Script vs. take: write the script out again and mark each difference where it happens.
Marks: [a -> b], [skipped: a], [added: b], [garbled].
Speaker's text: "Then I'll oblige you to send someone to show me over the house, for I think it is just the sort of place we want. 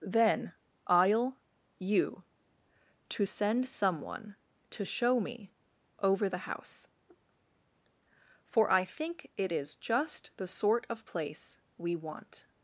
"Then I'll [skipped: oblige] you to send someone to show me over the house, for I think it is just the sort of place we want.